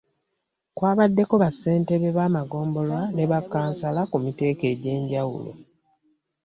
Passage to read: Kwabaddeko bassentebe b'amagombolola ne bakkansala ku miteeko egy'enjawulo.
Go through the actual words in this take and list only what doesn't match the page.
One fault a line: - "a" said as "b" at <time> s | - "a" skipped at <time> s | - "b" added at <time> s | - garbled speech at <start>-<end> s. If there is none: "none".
none